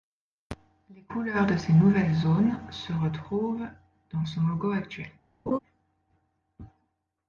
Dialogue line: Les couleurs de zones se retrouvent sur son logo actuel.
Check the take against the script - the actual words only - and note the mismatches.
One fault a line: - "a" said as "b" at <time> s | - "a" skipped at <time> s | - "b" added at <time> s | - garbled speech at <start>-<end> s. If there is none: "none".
- "ces nouvelles" added at 1.6 s
- "sur" said as "dans" at 4.1 s